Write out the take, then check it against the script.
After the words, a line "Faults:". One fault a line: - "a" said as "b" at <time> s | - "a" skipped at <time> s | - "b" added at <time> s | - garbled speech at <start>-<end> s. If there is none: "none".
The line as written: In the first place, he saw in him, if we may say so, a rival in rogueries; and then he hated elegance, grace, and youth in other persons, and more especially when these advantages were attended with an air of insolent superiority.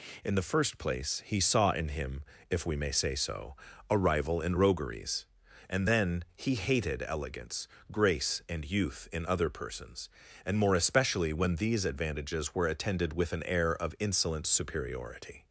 In the first place, he saw in him, if we may say so, a rival in rogueries; and then he hated elegance, grace, and youth in other persons, and more especially when these advantages were attended with an air of insolent superiority.
Faults:
none